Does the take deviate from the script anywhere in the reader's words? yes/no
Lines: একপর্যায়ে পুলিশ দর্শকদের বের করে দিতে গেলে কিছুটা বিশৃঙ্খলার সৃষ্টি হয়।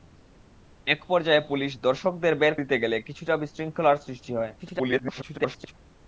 yes